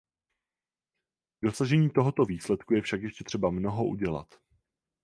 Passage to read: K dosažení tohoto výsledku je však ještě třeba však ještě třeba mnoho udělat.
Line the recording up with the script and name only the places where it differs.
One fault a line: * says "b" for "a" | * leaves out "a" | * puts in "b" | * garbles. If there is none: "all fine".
* leaves out "však ještě třeba"